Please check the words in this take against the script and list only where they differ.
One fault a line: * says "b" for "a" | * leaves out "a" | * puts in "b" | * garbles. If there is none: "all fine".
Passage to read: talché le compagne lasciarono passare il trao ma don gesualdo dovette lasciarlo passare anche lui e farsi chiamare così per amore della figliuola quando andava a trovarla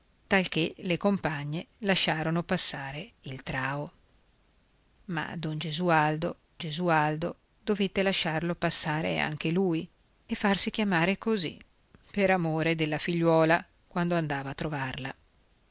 * puts in "gesualdo"